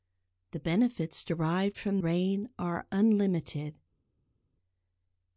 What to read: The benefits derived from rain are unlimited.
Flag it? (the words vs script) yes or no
no